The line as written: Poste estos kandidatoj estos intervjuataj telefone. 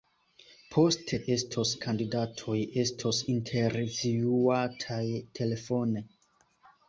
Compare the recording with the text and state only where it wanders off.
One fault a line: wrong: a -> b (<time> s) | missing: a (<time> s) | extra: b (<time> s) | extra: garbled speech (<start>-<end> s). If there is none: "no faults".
no faults